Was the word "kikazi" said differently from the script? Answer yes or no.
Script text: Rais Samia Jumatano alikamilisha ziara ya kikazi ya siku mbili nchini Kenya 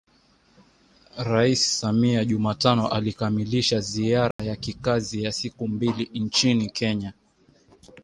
no